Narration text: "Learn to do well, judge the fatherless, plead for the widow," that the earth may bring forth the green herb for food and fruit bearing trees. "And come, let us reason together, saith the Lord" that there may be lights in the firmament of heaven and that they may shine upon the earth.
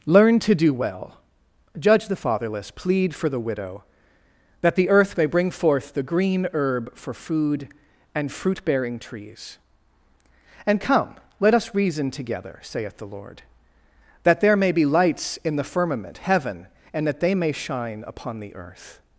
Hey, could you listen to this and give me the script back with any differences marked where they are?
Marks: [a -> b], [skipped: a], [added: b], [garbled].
"Learn to do well, judge the fatherless, plead for the widow," that the earth may bring forth the green herb for food and fruit bearing trees. "And come, let us reason together, saith the Lord" that there may be lights in the firmament [skipped: of] heaven and that they may shine upon the earth.